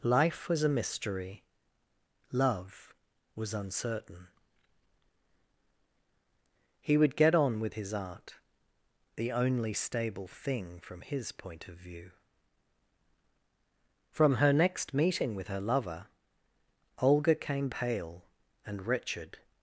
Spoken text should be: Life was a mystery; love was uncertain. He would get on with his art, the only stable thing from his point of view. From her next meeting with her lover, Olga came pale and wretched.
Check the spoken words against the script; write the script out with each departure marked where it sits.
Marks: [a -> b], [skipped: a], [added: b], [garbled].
Life was a mystery; love was uncertain. He would get on with his art, the only stable thing from his point of view. From her next meeting with her lover, Olga came pale and wretched.